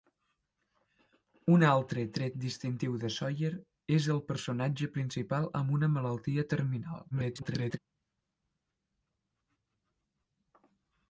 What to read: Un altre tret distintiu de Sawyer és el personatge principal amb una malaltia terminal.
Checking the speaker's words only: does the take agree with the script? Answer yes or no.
no